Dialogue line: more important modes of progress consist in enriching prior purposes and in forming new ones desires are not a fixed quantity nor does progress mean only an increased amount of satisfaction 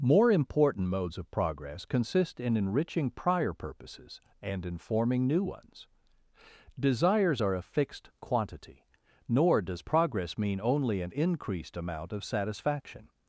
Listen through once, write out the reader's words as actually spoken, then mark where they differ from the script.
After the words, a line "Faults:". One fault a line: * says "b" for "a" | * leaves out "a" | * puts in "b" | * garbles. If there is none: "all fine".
more important modes of progress consist in enriching prior purposes and in forming new ones desires are a fixed quantity nor does progress mean only an increased amount of satisfaction
Faults:
* leaves out "not"